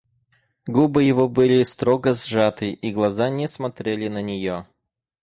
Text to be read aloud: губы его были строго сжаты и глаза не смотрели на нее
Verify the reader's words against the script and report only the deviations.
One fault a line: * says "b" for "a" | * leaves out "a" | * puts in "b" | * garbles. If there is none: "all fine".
all fine